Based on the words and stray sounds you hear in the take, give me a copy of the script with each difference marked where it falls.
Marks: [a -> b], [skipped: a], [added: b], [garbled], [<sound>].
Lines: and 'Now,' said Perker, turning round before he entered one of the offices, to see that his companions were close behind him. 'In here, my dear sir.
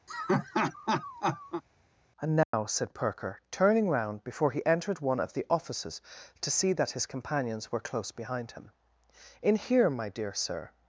[laugh] and 'Now,' [dropout] said Perker, turning round before he entered one of the offices, to see that his companions were close behind him. 'In here, my dear sir.